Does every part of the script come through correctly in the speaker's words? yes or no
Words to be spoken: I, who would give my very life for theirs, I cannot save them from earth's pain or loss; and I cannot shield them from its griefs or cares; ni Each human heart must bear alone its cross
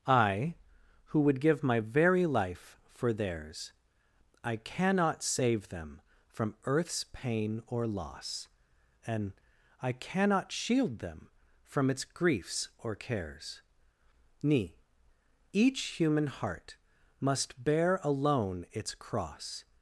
yes